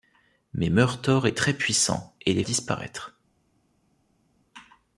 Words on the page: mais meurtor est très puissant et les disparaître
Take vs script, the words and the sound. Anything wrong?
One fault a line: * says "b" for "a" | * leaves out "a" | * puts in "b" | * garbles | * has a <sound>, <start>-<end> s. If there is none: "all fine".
all fine